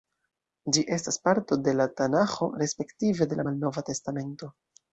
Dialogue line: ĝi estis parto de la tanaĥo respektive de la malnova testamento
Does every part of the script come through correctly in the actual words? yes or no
no